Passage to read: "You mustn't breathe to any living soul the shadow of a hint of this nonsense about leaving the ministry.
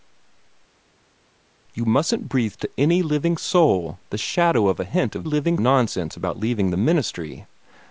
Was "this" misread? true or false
true